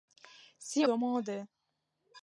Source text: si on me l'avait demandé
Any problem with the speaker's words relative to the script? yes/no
yes